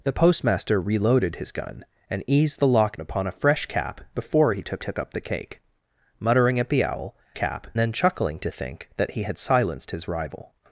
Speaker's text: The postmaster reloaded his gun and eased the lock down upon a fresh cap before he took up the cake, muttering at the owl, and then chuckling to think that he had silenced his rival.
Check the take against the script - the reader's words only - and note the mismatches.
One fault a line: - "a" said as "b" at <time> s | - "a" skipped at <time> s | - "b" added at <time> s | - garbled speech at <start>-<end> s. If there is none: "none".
- "down" skipped at 3.0 s
- "took" added at 4.8 s
- "and" said as "cap" at 7.3 s